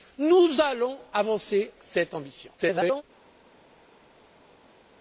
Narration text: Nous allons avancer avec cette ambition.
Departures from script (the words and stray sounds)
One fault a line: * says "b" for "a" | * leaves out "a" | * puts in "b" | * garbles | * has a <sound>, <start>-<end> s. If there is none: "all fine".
* leaves out "avec"
* garbles